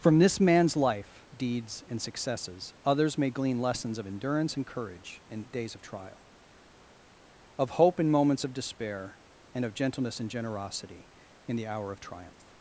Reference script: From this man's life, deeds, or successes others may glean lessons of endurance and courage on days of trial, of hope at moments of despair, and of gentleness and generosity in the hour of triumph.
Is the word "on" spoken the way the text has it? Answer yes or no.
no